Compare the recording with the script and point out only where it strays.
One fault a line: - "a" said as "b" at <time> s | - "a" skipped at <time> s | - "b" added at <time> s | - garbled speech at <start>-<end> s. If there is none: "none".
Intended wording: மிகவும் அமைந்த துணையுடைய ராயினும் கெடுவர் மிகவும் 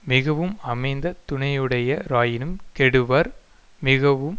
none